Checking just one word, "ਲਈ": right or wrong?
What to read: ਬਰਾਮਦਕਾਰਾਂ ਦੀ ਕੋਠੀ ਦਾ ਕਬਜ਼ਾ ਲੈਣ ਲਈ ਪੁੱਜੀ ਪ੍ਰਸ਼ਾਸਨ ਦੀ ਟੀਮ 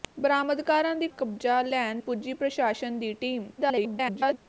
wrong